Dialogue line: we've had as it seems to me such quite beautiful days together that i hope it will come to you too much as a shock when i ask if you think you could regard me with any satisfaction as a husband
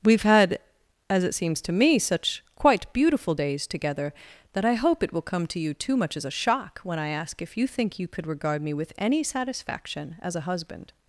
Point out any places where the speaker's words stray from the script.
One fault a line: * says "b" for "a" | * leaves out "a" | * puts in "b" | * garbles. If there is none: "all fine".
all fine